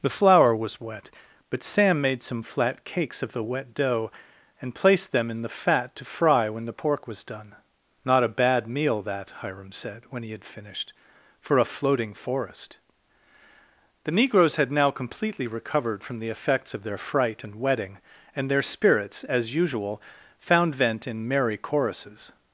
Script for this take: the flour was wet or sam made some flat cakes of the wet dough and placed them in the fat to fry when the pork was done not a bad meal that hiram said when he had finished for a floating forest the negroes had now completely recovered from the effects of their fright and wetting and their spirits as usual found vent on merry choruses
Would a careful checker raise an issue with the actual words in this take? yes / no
yes